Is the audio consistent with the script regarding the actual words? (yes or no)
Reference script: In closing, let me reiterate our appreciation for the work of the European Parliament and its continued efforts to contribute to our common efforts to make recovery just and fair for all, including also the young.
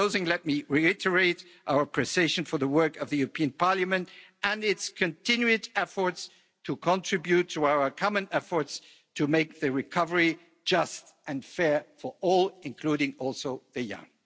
no